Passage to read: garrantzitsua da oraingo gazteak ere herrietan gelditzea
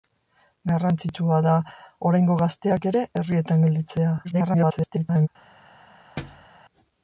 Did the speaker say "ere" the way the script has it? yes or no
yes